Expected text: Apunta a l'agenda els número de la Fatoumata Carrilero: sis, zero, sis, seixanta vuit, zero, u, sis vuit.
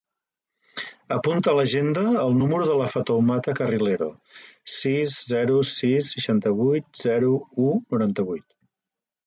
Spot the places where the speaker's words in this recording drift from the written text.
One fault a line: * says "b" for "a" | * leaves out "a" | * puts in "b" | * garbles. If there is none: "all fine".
* says "el" for "els"
* says "noranta" for "sis"